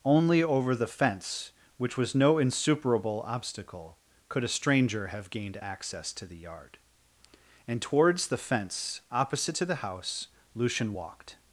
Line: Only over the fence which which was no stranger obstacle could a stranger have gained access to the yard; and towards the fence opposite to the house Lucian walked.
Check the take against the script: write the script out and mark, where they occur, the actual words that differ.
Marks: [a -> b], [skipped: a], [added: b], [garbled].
Only over the fence which [skipped: which] was no [stranger -> insuperable] obstacle could a stranger have gained access to the yard; and towards the fence opposite to the house Lucian walked.